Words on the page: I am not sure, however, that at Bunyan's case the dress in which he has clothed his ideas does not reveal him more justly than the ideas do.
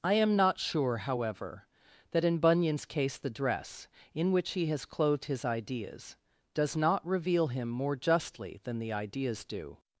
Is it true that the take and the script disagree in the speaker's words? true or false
true